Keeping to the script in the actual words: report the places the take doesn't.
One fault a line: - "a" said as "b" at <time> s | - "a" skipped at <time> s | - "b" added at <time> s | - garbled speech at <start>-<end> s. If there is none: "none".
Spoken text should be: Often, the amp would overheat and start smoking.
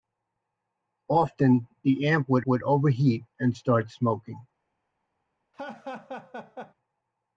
- "would" added at 2.4 s